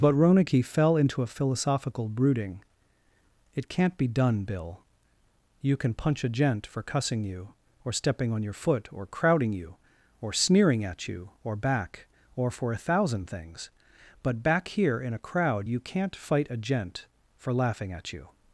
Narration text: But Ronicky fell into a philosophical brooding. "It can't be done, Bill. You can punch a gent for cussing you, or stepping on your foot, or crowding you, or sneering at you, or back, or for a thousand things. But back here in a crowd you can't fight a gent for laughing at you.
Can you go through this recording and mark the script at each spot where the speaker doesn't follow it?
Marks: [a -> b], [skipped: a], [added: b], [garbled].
But Ronicky fell into a philosophical brooding. "It can't be done, Bill. You can punch a gent for cussing you, or stepping on your foot, or crowding you, or sneering at you, or back, or for a thousand things. But back here in a crowd you can't fight a gent for laughing at you.